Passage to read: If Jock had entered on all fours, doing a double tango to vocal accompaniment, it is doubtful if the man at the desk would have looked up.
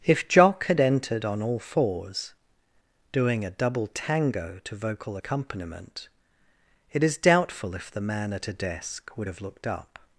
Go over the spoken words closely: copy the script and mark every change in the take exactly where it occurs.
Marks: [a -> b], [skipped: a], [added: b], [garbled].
If Jock had entered on all fours, doing a double tango to vocal accompaniment, it is doubtful if the man at [the -> a] desk would have looked up.